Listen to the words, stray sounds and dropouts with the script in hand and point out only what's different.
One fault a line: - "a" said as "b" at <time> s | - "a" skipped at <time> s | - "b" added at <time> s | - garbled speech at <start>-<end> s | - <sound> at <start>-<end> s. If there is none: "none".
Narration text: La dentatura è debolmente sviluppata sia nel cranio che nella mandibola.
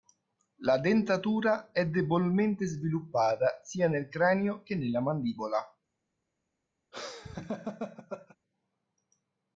- laugh at 6.9-8.4 s